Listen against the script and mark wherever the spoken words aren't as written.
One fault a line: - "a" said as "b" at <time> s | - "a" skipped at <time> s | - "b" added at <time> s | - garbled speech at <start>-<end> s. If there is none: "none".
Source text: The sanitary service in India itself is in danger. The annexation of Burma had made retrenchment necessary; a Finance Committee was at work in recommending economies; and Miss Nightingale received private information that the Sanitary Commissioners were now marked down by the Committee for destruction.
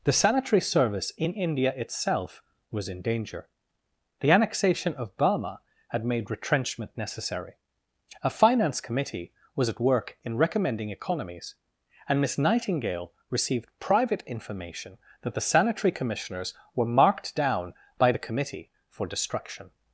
- "is" said as "was" at 2.7 s
- "now" skipped at 16.9 s